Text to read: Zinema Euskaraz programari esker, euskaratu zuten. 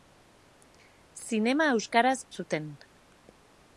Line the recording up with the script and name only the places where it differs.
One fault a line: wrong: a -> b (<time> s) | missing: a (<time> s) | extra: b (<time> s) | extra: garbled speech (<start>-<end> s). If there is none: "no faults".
missing: programari esker euskaratu (2.1 s)